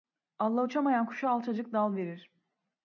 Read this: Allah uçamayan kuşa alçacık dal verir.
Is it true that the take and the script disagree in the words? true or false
false